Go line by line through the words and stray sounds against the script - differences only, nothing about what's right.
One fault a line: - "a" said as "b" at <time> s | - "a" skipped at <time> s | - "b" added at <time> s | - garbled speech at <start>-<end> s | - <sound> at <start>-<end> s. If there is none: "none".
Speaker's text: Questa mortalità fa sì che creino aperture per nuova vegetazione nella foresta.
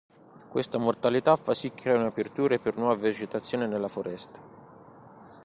none